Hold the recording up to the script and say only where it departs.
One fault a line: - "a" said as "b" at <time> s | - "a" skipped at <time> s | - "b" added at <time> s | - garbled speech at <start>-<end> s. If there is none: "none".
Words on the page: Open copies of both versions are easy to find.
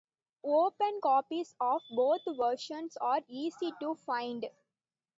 none